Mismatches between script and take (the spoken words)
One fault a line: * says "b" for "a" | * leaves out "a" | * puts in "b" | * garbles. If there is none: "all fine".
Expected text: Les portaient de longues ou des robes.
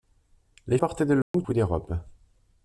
all fine